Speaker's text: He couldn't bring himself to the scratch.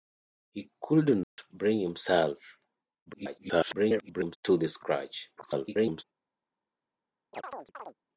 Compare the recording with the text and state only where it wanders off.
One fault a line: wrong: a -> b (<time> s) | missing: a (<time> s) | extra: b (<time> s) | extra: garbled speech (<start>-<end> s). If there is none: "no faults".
extra: garbled speech (3.1-4.4 s)
extra: garbled speech (5.4-6.0 s)